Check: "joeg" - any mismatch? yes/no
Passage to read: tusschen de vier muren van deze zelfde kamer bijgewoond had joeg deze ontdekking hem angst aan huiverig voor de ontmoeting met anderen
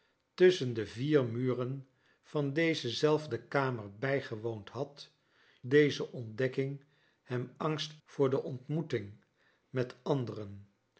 yes